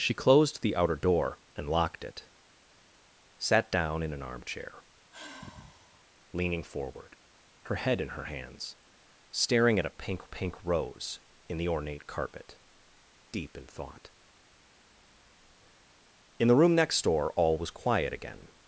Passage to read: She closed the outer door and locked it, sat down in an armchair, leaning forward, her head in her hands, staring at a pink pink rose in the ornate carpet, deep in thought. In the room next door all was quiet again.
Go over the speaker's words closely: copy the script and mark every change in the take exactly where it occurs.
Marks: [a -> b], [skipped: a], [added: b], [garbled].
She closed the outer door and locked it, sat down in an armchair, leaning forward, her head in her hands, staring at a pink pink rose in the ornate carpet, deep in thought. In the room next door all was quiet again.